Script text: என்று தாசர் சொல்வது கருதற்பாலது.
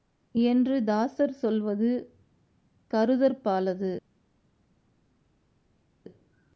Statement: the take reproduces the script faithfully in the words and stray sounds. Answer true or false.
true